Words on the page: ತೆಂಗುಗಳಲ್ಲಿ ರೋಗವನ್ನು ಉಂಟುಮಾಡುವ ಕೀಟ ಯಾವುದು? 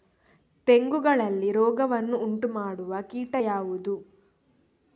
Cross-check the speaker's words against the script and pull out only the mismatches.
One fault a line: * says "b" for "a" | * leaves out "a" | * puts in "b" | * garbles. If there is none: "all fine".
all fine